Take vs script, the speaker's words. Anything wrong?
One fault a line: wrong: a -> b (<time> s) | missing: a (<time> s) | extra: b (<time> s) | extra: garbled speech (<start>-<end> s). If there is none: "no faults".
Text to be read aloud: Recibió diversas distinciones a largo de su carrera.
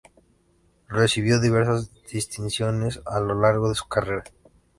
extra: lo (3.2 s)